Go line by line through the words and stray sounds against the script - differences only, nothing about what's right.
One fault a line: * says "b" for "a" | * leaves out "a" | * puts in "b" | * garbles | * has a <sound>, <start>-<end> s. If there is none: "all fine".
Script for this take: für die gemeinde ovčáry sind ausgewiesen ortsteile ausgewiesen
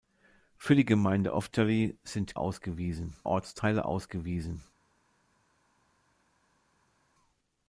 all fine